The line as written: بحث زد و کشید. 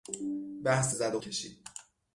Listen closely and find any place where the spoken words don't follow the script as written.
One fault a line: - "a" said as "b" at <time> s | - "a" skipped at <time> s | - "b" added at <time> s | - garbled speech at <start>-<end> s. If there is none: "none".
none